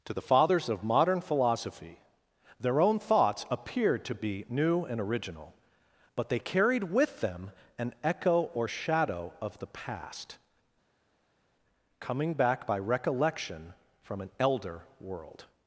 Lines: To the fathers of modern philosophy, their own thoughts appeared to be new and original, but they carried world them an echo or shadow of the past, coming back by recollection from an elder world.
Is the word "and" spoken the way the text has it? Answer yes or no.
yes